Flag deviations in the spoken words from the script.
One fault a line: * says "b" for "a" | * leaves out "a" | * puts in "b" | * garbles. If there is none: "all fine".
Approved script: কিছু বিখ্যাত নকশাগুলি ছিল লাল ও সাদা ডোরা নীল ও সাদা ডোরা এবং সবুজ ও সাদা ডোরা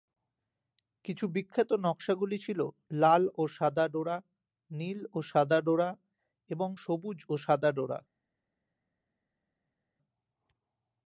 all fine